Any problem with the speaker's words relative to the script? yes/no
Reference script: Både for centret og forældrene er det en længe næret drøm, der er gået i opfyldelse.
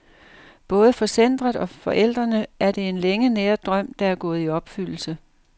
no